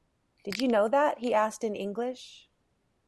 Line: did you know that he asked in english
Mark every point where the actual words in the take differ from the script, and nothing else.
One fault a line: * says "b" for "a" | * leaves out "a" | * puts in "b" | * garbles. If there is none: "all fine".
all fine